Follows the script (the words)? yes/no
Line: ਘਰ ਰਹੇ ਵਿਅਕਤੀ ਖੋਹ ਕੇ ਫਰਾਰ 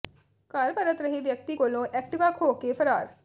no